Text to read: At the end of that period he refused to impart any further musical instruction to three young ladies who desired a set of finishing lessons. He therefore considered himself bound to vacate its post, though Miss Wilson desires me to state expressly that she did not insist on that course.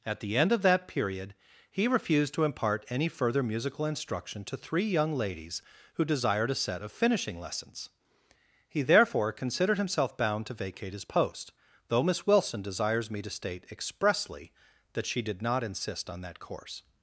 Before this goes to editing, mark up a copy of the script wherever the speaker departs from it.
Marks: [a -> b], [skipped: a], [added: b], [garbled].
At the end of that period he refused to impart any further musical instruction to three young ladies who desired a set of finishing lessons. He therefore considered himself bound to vacate [its -> his] post, though Miss Wilson desires me to state expressly that she did not insist on that course.